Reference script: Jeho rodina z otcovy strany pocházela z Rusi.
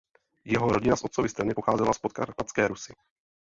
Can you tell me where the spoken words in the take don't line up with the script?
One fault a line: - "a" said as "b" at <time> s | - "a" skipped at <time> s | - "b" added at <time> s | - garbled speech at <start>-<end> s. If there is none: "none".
- "Podkarpatské" added at 2.0 s